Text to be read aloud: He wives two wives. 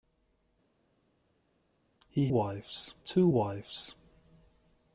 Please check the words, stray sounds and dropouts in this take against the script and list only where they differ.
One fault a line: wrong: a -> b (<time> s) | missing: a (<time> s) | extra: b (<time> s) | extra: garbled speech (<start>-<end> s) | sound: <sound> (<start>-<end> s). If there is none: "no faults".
no faults